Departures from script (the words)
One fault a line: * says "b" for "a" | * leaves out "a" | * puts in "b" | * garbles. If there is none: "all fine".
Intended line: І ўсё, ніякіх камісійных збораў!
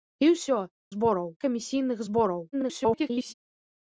* says "збораў" for "ніякіх"
* garbles